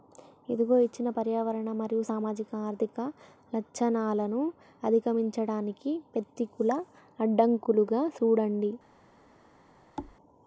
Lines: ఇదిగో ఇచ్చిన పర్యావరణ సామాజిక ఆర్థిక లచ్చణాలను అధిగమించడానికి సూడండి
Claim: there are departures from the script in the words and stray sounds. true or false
true